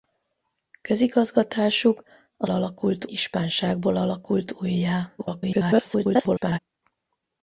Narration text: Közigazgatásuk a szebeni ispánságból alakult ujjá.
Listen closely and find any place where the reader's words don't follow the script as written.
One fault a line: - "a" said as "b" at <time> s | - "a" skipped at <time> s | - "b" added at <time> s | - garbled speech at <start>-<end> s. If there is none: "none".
- "szebeni" said as "alakult" at 2.5 s
- garbled speech at 5.2-6.6 s